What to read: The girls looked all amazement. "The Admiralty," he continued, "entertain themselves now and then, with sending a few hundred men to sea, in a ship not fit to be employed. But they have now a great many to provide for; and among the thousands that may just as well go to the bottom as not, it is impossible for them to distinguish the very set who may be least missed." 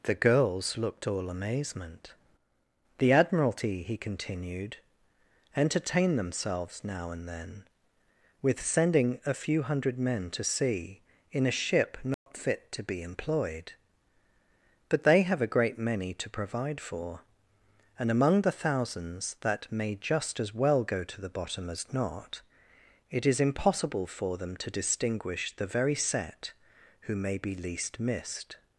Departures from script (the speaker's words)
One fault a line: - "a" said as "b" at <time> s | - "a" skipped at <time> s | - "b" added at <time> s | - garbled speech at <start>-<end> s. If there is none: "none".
- "now" skipped at 15.4 s